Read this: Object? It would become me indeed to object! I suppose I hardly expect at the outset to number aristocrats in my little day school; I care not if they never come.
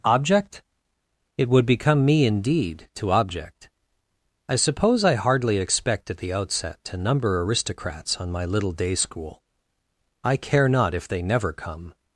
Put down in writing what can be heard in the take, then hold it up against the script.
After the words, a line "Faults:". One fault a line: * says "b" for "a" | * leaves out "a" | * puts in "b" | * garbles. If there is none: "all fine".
Object? It would become me indeed to object! I suppose I hardly expect at the outset to number aristocrats on my little day school; I care not if they never come.
Faults:
* says "on" for "in"